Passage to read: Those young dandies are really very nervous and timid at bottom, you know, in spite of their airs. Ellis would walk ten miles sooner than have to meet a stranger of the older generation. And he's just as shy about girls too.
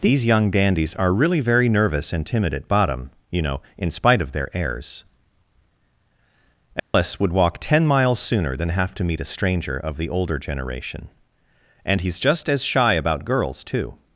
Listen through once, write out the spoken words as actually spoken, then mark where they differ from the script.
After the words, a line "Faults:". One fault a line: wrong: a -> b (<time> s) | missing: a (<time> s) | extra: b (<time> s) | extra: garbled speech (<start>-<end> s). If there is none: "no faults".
These young dandies are really very nervous and timid at bottom, you know, in spite of their airs. Ellis would walk ten miles sooner than have to meet a stranger of the older generation. And he's just as shy about girls too.
Faults:
wrong: Those -> These (0.0 s)